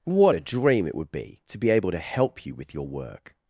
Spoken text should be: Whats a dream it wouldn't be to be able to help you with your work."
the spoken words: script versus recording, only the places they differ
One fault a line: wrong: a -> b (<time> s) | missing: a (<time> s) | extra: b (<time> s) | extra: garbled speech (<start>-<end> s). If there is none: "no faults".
wrong: Whats -> What (0.0 s)
wrong: wouldn't -> would (0.9 s)